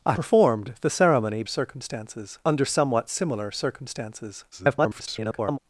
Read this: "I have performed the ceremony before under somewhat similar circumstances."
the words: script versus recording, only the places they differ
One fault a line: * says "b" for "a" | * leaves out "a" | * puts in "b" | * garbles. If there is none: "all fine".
* leaves out "have"
* says "circumstances" for "before"
* garbles